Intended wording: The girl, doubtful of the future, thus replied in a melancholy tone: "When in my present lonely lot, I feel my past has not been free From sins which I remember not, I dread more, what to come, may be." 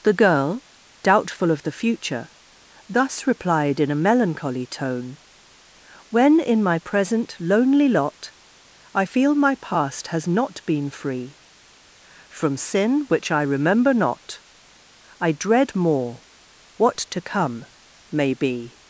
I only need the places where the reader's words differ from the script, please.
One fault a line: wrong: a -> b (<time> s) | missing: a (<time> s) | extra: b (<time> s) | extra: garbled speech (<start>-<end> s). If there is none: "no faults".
wrong: sins -> sin (12.6 s)